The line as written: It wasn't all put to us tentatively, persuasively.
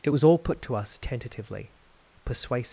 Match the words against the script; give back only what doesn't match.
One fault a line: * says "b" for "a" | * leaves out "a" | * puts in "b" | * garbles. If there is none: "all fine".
* says "was" for "wasn't"